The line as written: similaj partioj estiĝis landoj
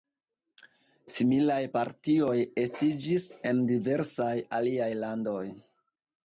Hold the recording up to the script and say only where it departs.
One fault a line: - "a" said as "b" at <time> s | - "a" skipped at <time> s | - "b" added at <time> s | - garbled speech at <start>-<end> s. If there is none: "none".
- "en diversaj aliaj" added at 3.5 s